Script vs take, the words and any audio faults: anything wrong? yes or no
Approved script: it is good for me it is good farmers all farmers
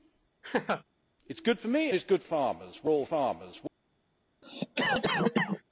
yes